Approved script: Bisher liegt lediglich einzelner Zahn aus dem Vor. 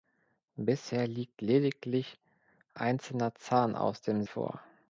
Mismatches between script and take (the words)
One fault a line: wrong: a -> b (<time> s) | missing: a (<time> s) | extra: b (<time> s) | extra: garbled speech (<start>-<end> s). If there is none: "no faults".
no faults